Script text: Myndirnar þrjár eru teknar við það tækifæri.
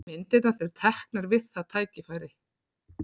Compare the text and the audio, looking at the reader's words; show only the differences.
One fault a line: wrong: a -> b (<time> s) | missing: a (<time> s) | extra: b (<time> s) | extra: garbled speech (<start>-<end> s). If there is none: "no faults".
missing: þrjár (0.6 s)